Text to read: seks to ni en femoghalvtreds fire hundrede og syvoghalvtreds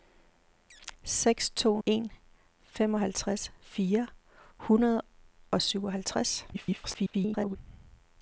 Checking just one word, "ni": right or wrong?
wrong